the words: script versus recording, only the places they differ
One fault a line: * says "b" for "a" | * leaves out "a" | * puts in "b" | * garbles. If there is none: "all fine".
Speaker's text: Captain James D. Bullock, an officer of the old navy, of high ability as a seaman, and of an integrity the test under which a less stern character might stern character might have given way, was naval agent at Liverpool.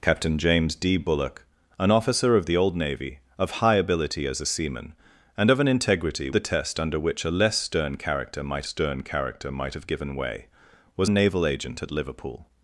all fine